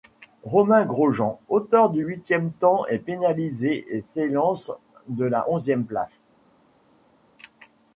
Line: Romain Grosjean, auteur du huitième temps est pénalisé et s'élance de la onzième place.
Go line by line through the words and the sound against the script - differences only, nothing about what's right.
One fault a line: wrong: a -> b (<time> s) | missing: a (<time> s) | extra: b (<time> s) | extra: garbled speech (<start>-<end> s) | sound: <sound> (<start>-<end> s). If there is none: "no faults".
no faults